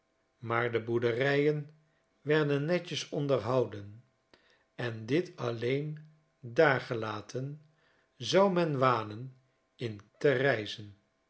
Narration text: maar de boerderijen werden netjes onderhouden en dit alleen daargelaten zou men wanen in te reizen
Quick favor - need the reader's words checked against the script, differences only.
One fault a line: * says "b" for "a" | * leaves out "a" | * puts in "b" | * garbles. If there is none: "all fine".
all fine